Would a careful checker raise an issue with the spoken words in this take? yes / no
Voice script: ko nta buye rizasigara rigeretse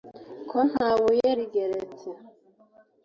yes